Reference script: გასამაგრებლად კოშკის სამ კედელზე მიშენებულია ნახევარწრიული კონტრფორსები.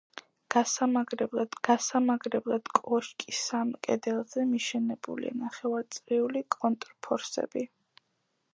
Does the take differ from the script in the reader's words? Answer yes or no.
yes